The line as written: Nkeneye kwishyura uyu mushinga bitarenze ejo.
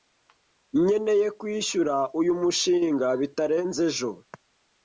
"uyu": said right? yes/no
yes